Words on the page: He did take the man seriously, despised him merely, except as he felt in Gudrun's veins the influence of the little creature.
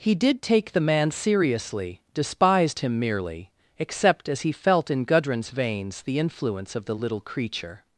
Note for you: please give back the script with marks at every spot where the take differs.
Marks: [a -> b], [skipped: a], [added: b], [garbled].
He did take the man seriously, despised him merely, except as he felt in Gudrun's veins the influence of the little creature.